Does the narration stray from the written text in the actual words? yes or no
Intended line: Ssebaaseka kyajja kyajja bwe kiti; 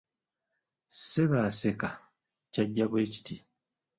yes